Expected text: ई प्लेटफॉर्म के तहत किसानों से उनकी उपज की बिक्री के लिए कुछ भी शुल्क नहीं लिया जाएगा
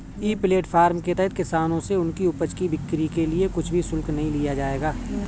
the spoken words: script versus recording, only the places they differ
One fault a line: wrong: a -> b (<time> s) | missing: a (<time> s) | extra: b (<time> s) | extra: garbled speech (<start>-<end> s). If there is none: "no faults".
no faults